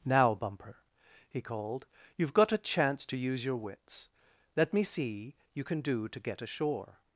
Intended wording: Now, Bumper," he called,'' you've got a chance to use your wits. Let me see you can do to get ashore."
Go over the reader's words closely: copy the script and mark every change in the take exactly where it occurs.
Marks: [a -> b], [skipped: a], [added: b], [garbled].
Now, Bumper," he called,'' you've got a chance to use your wits. Let me see you can do to get ashore."